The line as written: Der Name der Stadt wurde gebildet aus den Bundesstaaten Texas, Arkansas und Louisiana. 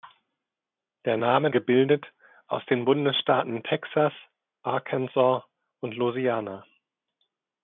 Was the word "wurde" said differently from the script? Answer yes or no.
yes